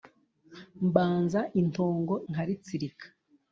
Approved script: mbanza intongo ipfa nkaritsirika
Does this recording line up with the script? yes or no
no